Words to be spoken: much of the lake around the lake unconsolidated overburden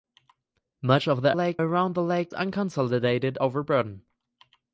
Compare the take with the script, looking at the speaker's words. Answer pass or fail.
pass